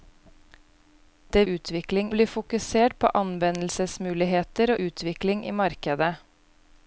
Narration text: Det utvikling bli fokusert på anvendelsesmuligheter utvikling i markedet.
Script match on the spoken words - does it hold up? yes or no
yes